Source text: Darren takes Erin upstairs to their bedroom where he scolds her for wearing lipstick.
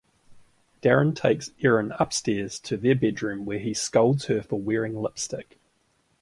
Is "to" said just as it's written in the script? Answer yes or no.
yes